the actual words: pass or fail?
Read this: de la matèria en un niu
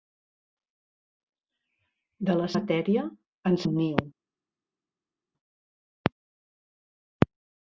pass